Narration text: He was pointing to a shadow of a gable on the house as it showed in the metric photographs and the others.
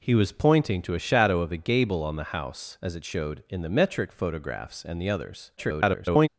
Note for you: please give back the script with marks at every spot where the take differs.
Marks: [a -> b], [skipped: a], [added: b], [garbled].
He was pointing to a shadow of a gable on the house as it showed in the metric photographs and the others. [garbled]